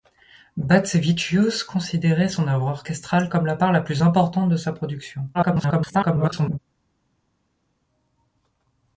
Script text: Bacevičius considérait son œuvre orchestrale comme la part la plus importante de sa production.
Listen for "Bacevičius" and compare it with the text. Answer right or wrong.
right